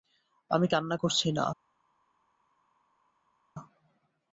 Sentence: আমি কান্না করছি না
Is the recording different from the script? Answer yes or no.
no